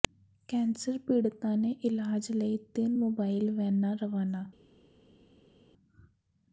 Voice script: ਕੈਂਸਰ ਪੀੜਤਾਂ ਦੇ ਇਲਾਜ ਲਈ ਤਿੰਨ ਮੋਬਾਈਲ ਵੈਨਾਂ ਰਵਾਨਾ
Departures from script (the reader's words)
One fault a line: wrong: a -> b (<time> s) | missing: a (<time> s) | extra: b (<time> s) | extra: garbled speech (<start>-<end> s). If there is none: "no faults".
no faults